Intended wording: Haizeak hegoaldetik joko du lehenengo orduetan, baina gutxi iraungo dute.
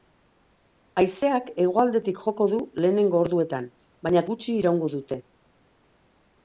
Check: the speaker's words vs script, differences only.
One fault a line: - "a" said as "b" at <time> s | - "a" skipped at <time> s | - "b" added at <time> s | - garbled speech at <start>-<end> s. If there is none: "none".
none